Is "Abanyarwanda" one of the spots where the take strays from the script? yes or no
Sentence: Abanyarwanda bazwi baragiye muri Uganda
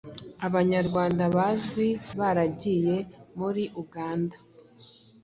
no